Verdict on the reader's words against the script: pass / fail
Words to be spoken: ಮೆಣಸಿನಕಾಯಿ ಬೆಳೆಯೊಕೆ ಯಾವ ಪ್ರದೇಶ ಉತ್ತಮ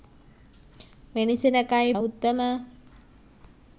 fail